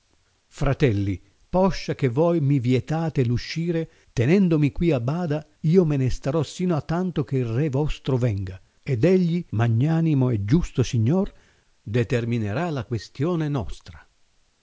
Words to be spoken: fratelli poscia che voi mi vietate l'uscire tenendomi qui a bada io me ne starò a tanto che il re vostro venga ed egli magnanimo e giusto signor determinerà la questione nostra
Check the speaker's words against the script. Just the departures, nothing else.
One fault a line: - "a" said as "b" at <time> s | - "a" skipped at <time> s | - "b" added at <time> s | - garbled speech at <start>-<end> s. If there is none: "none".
- "sino" added at 6.4 s